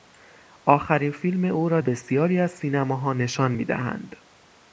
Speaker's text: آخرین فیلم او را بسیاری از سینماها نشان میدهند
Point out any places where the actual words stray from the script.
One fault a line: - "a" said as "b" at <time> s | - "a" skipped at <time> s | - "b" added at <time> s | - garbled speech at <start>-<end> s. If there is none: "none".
none